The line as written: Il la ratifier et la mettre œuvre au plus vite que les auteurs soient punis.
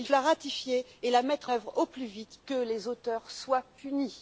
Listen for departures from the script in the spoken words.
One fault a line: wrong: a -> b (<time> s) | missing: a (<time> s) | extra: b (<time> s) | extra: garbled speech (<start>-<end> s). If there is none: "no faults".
no faults